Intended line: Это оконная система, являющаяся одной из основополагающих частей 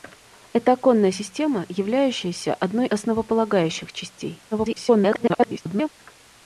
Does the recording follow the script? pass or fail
fail